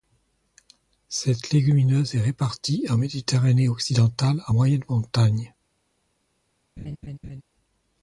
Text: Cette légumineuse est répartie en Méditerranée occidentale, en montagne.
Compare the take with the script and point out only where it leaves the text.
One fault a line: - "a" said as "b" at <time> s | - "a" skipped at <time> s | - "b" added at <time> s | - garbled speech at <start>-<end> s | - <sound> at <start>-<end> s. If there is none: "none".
- "moyenne" added at 4.5 s
- laugh at 6.8-7.4 s